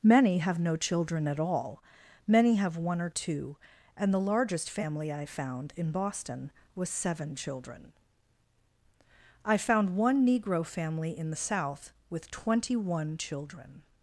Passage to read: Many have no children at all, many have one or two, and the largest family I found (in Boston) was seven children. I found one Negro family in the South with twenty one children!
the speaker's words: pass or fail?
pass